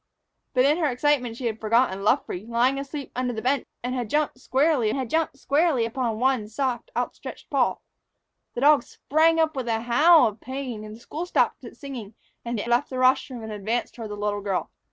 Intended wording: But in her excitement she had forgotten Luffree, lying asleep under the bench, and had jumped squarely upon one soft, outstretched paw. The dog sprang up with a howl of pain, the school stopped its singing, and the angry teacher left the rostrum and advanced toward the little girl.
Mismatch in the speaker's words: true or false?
true